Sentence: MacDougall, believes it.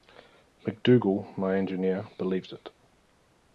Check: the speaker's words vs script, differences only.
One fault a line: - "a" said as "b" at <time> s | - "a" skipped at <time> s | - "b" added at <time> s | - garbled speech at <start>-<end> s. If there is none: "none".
- "my engineer" added at 1.4 s